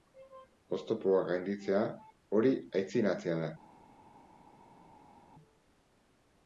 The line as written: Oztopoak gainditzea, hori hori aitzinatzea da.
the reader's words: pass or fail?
fail